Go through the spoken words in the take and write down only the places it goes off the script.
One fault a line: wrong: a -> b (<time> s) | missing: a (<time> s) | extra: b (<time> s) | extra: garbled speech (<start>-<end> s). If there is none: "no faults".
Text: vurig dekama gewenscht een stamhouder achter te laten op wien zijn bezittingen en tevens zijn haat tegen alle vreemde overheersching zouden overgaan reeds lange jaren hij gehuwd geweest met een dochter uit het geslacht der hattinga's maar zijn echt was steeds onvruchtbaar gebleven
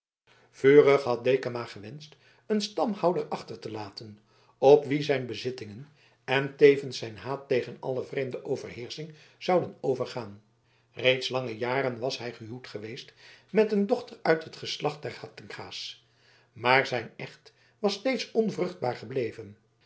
extra: had (1.0 s)
extra: was (12.0 s)